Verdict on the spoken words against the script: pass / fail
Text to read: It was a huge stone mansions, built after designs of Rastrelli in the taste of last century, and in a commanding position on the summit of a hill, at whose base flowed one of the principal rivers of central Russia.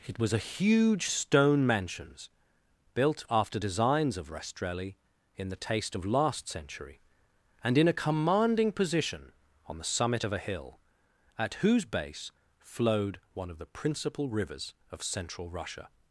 pass